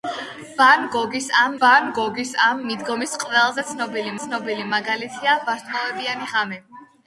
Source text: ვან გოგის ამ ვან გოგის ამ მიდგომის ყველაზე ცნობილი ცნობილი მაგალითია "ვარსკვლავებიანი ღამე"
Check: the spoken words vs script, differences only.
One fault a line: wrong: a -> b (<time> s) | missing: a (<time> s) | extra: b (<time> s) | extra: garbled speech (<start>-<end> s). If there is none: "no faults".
no faults